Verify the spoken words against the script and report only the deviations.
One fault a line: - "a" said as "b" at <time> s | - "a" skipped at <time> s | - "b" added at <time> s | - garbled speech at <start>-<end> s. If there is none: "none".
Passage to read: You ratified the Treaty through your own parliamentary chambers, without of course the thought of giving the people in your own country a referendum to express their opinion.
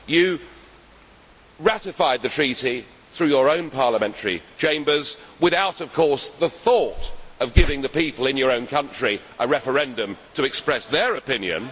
none